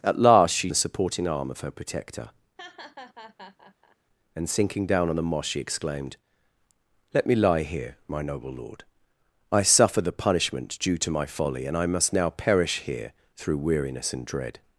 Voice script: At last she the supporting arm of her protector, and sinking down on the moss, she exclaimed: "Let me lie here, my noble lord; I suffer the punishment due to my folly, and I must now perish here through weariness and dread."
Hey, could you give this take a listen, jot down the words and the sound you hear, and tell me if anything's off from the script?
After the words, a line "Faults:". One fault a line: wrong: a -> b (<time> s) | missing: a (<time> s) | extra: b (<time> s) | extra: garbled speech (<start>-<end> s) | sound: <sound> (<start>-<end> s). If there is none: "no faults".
At last she the supporting arm of her protector, and sinking down on the moss, she exclaimed: "Let me lie here, my noble lord; I suffer the punishment due to my folly, and I must now perish here through weariness and dread."
Faults:
sound: laugh (2.6-4.0 s)